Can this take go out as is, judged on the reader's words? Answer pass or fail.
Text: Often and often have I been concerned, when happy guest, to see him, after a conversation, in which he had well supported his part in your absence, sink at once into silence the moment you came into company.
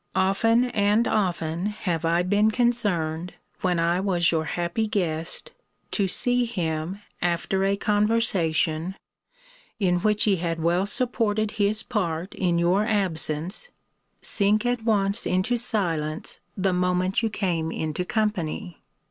fail